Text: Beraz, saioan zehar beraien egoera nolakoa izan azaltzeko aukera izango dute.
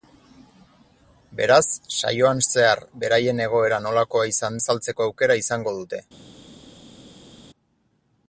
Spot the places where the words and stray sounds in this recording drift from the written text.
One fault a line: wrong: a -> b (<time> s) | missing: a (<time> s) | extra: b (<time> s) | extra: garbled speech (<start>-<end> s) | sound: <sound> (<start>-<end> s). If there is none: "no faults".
no faults